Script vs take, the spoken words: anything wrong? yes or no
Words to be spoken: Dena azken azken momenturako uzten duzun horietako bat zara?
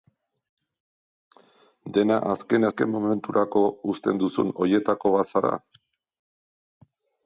no